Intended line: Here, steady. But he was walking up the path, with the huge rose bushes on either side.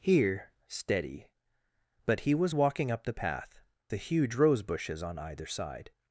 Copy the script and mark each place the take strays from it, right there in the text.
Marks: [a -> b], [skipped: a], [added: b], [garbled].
Here, steady. But he was walking up the path, [skipped: with] the huge rose bushes on either side.